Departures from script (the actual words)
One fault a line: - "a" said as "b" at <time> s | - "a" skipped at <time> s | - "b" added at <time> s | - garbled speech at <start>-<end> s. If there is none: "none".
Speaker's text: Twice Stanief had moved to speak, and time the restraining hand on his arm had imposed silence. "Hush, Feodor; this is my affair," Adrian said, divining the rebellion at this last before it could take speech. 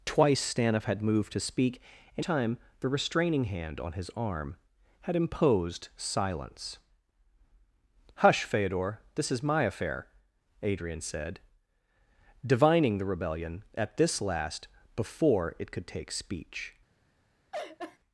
none